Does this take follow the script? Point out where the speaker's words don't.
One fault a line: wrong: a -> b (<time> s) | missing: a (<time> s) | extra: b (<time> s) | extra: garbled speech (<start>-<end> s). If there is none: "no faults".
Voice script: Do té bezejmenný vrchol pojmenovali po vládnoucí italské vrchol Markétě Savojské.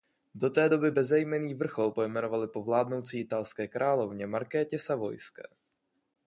extra: doby (0.7 s)
wrong: vrchol -> královně (3.7 s)